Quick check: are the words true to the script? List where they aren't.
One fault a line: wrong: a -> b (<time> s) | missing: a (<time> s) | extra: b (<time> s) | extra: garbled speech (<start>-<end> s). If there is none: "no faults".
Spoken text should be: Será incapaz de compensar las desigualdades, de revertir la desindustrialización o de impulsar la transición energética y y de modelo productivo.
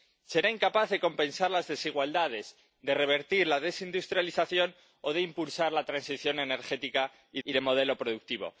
no faults